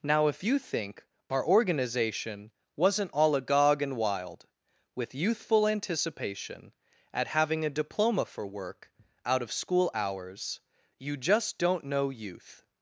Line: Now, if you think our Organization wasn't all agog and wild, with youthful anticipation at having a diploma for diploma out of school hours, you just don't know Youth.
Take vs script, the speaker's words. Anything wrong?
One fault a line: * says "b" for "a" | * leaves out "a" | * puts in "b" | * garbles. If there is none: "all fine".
* says "work" for "diploma"